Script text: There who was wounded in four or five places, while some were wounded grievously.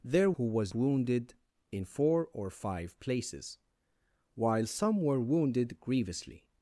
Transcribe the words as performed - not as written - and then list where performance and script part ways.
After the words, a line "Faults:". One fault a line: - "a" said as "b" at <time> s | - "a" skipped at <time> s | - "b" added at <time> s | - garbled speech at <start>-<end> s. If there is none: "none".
There who was wounded in four or five places, while some were wounded grievously.
Faults:
none